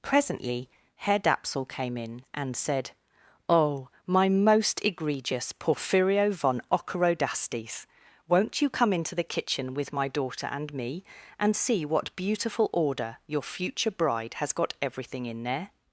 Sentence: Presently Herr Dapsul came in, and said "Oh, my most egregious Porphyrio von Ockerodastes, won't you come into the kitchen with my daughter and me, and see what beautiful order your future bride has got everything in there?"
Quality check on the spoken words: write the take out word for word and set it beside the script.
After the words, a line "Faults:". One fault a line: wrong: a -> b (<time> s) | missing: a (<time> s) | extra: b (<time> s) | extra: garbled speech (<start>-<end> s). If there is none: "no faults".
Presently Herr Dapsul came in, and said "Oh, my most egregious Porphyrio von Ockerodastes, won't you come into the kitchen with my daughter and me, and see what beautiful order your future bride has got everything in there?"
Faults:
no faults